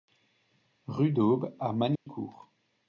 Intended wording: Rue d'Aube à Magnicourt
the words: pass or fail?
pass